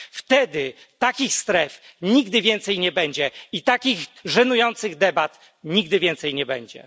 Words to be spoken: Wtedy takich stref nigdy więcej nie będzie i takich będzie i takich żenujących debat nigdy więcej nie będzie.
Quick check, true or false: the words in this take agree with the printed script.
false